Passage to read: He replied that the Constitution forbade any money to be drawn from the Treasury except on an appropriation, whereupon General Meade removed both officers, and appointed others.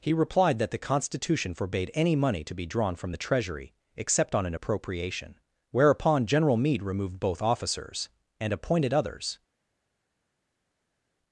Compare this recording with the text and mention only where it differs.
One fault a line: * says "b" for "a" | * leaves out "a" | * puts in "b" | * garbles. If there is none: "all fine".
all fine